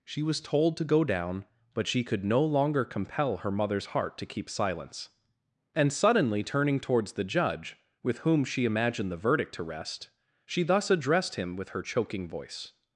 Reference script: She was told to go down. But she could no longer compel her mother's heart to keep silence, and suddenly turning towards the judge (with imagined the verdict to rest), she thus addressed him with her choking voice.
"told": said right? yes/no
yes